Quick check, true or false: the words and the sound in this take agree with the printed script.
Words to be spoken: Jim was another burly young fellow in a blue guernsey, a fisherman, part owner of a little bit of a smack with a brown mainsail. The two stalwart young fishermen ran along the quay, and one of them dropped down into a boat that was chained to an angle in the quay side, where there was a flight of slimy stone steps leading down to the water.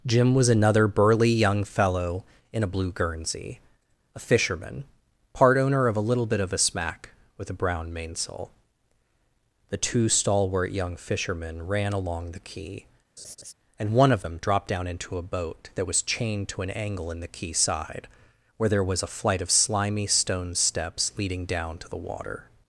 false